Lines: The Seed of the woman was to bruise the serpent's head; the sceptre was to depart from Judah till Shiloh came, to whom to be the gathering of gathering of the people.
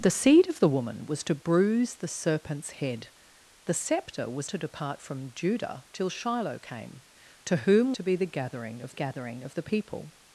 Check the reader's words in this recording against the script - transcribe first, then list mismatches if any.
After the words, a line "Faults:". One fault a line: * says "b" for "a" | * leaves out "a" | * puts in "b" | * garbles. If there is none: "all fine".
The Seed of the woman was to bruise the serpent's head; the sceptre was to depart from Judah till Shiloh came, to whom to be the gathering of gathering of the people.
Faults:
all fine